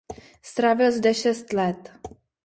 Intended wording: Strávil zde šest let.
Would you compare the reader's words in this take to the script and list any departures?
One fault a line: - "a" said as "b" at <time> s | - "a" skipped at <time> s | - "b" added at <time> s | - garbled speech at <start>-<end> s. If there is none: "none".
none